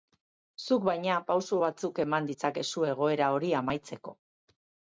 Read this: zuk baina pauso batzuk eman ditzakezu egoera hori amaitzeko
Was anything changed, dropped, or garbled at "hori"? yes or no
no